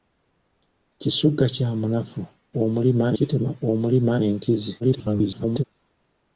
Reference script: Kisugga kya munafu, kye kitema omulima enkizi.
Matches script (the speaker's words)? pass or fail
fail